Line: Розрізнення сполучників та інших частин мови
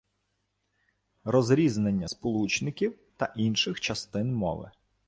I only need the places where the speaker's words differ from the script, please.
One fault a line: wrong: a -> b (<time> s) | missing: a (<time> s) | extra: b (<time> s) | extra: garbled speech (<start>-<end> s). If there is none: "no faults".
no faults